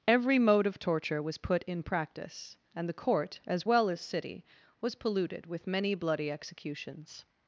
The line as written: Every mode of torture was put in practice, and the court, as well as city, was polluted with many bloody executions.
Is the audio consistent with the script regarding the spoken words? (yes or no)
yes